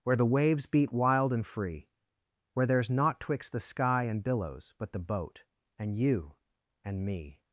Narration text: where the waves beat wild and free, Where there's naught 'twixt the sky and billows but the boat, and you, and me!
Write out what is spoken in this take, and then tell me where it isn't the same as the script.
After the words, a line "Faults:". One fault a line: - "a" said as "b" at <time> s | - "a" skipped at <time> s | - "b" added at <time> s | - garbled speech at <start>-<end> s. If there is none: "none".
where the waves beat wild and free, Where there's naught 'twixt the sky and billows but the boat, and you, and me!
Faults:
none